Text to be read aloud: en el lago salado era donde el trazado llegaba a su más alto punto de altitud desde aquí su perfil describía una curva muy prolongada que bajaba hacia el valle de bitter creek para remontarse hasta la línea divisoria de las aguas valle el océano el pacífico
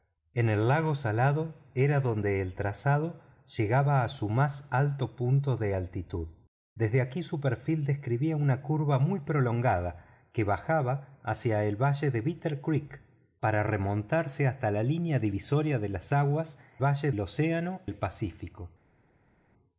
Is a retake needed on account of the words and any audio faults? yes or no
no